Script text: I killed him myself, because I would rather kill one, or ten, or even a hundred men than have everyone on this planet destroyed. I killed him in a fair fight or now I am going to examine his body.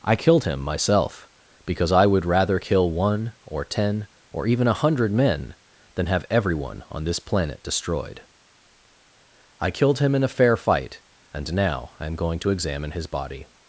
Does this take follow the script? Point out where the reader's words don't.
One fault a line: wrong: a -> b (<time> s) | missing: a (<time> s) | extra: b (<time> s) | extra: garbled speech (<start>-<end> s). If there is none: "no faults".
wrong: or -> and (11.3 s)